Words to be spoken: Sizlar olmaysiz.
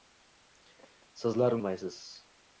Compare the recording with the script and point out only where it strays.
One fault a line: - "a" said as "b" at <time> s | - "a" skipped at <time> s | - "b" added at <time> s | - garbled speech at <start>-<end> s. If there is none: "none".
none